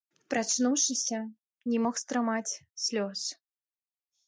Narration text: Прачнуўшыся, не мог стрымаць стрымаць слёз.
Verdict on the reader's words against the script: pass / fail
fail